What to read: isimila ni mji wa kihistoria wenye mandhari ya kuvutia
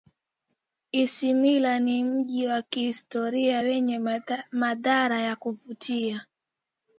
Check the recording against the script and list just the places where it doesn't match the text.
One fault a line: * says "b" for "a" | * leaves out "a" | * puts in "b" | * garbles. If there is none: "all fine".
all fine